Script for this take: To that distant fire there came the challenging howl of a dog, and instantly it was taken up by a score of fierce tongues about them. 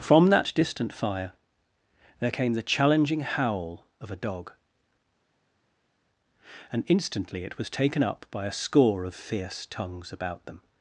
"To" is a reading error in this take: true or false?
true